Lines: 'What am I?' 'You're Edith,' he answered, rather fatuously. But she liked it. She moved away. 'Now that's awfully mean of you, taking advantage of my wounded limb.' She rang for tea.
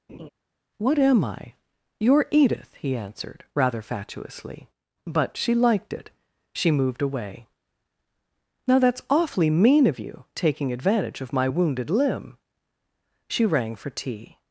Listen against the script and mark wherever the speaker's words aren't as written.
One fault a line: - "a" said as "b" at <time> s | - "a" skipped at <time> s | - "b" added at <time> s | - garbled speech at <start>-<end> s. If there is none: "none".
none